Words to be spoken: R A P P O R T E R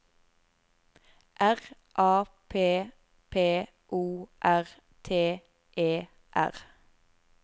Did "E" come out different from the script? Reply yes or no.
no